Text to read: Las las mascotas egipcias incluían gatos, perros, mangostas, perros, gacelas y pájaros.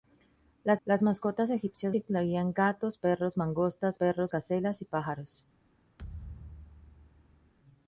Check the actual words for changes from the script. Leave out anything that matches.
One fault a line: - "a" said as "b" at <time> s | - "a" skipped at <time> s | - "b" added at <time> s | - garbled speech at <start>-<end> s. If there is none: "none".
none